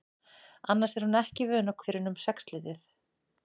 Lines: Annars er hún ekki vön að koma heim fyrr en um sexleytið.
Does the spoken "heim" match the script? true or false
false